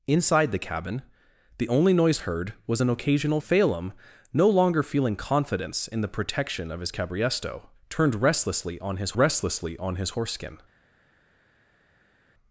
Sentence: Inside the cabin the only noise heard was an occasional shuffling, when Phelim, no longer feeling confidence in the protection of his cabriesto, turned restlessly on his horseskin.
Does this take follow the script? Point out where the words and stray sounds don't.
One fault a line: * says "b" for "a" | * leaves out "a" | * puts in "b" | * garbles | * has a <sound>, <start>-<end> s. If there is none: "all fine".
* leaves out "shuffling when"
* puts in "restlessly on his"